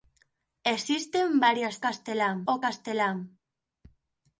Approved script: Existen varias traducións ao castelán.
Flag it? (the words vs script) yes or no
yes